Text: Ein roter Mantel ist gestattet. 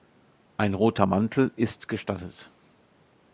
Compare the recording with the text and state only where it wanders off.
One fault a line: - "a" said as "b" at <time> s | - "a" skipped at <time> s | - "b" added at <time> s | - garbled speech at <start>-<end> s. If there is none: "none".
none